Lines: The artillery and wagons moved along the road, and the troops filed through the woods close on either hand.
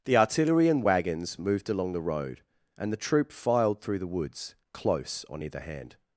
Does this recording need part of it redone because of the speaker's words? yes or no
yes